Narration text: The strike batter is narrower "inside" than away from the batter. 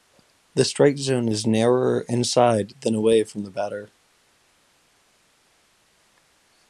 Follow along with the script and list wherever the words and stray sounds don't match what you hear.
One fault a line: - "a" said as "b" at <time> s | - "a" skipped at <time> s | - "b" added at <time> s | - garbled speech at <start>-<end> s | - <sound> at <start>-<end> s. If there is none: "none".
- "batter" said as "zone" at 1.0 s